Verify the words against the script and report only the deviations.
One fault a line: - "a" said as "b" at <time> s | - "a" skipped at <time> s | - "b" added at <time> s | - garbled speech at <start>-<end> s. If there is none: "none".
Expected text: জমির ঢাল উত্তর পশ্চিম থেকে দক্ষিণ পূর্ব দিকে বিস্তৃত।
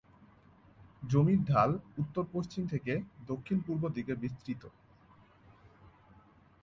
none